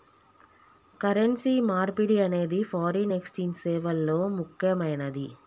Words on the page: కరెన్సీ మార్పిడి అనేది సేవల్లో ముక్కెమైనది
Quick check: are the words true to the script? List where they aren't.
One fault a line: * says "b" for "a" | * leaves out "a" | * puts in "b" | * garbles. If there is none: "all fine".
* puts in "ఫారిన్ ఎక్స్ఛేంజ్"